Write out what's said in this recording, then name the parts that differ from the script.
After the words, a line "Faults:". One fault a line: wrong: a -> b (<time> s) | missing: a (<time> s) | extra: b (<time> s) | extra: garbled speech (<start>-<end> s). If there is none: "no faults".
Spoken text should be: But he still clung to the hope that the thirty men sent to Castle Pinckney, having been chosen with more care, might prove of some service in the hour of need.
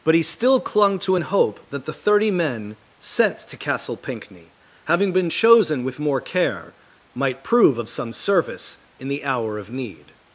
But he still clung to an hope that the thirty men sent to Castle Pinckney, having been chosen with more care, might prove of some service in the hour of need.
Faults:
wrong: the -> an (1.1 s)